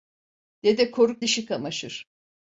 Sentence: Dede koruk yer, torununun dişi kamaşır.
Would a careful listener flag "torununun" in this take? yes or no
yes